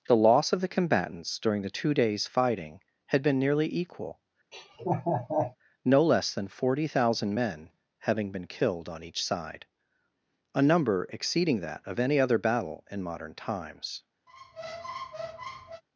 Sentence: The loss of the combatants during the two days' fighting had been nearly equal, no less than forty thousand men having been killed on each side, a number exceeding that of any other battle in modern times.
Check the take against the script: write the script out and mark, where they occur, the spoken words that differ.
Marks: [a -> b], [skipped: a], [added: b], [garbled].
The loss of the combatants during the two days' fighting had been nearly equal, no less than forty thousand men having been killed on each side, a number exceeding that of any other battle in modern times.